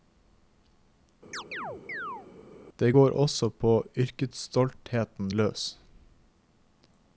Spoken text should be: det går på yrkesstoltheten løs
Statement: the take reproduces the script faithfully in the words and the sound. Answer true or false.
false